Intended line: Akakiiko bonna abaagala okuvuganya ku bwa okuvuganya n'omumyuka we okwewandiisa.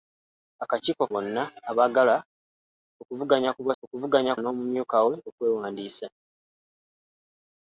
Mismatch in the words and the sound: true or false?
false